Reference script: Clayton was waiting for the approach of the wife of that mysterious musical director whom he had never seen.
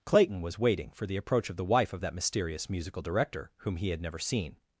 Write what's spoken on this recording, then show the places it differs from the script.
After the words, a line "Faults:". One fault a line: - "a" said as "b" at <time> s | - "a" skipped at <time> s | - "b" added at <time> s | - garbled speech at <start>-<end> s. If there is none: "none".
Clayton was waiting for the approach of the wife of that mysterious musical director whom he had never seen.
Faults:
none